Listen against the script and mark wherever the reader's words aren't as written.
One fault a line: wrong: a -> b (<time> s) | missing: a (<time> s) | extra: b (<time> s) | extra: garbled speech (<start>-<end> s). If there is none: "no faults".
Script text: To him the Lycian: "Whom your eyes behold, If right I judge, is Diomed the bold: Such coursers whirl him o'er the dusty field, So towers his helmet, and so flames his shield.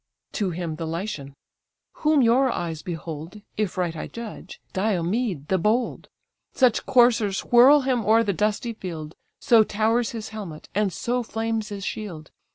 missing: is (4.6 s)